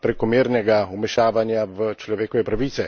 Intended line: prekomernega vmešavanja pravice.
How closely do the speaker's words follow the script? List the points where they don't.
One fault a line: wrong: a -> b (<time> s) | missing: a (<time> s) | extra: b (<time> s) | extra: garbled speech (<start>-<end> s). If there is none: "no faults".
extra: v človekove (1.7 s)